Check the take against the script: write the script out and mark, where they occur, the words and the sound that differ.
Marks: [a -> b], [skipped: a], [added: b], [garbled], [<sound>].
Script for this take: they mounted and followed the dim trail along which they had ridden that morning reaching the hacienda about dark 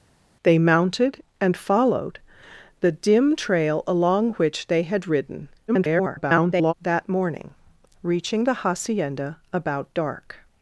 they mounted and followed the dim trail along which they had ridden [garbled] that morning reaching the hacienda about dark